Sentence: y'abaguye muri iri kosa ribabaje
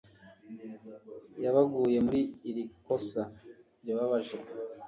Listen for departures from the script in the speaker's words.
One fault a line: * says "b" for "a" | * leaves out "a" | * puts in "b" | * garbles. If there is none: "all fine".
all fine